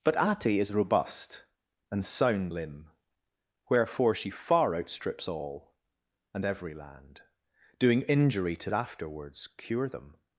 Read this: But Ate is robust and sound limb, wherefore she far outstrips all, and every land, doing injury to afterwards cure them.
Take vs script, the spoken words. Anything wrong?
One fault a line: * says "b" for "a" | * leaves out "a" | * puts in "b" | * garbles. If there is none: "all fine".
all fine